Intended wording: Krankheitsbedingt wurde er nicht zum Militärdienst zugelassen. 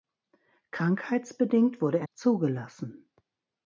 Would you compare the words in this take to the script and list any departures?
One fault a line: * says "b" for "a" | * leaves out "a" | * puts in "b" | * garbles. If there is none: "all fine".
* leaves out "nicht zum Militärdienst"